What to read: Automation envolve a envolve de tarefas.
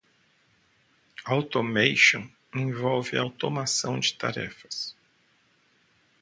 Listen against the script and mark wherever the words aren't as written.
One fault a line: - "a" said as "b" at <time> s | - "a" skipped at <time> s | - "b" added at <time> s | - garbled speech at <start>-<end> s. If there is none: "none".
- "envolve" said as "automação" at 3.2 s